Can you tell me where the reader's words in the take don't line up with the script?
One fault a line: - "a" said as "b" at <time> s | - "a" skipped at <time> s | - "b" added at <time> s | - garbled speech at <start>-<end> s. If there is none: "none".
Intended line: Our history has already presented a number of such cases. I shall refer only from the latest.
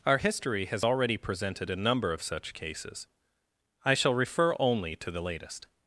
- "from" said as "to" at 5.0 s